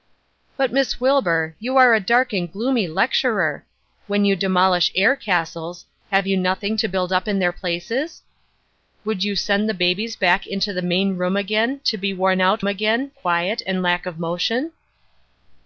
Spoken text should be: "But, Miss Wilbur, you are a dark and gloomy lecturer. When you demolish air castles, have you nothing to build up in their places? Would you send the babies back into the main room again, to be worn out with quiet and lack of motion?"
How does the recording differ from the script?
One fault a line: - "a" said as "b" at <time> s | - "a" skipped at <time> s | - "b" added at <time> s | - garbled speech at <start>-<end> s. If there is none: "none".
- "with" said as "again" at 12.6 s